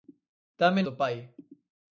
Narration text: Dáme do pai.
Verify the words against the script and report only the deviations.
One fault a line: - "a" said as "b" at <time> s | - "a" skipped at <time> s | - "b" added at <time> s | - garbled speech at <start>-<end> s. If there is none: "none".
none